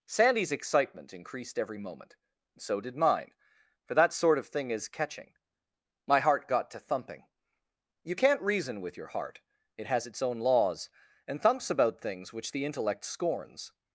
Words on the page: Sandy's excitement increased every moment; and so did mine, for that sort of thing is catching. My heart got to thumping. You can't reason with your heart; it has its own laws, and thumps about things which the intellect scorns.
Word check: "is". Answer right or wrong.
right